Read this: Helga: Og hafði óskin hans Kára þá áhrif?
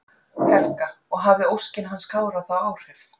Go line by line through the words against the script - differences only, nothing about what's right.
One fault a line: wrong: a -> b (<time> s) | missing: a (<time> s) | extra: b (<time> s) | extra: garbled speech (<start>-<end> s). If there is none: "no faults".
no faults